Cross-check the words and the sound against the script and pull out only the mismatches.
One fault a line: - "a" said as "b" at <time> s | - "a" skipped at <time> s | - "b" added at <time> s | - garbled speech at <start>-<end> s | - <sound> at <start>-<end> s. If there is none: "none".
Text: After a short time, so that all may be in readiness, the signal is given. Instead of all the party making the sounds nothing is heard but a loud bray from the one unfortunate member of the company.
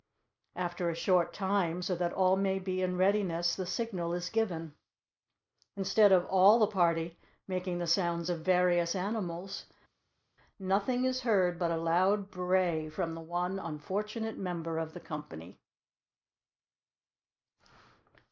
- "of various animals" added at 8.3 s